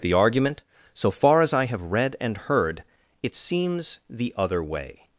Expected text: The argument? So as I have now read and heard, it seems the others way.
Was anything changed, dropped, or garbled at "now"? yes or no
yes